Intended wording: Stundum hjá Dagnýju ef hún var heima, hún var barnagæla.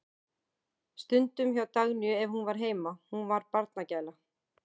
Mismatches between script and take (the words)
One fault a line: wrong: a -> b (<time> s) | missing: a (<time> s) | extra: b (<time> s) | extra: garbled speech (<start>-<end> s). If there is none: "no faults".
no faults